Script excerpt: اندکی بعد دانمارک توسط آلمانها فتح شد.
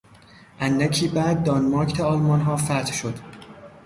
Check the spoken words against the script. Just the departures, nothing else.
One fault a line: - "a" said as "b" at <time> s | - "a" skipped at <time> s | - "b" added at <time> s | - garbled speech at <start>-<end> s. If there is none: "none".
- "توسط" skipped at 2.0 s